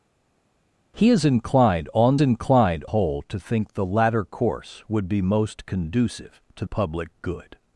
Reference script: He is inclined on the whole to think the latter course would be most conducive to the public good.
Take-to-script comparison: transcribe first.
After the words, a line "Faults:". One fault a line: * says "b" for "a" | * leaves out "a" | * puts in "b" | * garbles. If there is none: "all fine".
He is inclined on inclined whole to think the latter course would be most conducive to public good.
Faults:
* says "inclined" for "the"
* leaves out "the"